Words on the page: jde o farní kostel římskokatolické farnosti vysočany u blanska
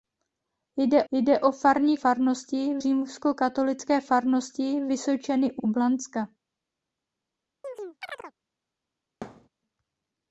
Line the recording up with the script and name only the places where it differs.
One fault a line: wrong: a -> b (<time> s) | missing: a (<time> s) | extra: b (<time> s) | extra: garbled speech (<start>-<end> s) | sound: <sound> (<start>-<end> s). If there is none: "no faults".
extra: jde (1.1 s)
wrong: kostel -> farnosti (1.9 s)
extra: u (5.6 s)
sound: chirp (7.6-8.3 s)
sound: thud (9.2-9.5 s)